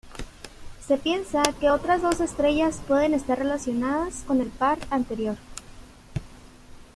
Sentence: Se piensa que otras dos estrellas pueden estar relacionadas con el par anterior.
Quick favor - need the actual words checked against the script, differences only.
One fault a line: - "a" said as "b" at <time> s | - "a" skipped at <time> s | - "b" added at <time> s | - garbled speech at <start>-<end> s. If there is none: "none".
none